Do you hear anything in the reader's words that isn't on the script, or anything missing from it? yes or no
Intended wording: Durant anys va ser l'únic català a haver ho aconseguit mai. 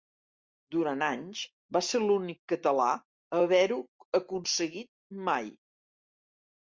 no